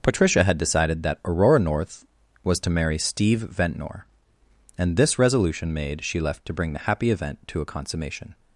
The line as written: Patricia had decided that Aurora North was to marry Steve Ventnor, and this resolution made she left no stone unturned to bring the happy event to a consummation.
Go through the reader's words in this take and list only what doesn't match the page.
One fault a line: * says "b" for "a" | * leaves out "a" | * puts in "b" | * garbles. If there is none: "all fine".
* leaves out "no stone unturned"